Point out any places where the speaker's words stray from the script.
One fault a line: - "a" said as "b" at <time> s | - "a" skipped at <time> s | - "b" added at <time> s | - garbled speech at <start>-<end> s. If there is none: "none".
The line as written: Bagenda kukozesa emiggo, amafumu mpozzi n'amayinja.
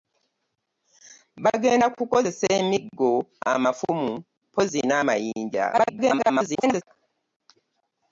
- garbled speech at 5.7-6.8 s